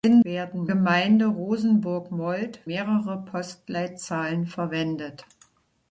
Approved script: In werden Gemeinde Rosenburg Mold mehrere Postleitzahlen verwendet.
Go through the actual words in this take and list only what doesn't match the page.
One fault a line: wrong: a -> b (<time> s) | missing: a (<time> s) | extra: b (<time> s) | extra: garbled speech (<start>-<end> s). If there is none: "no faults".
no faults